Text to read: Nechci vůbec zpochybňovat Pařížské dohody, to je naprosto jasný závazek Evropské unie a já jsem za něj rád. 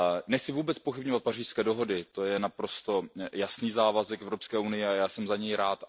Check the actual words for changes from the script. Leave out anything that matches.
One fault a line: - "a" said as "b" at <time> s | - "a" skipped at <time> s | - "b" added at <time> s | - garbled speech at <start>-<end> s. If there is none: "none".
none